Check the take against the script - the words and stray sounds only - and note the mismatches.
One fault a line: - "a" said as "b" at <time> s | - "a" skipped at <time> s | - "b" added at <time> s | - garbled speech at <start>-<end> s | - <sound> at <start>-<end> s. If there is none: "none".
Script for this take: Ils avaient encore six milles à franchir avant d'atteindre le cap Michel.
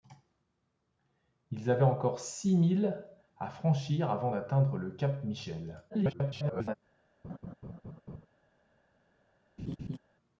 - garbled speech at 5.9-6.8 s
- laugh at 7.2-8.3 s
- laugh at 9.6-10.0 s